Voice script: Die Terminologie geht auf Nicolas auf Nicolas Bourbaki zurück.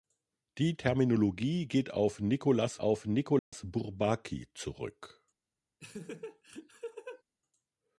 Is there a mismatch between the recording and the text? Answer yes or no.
no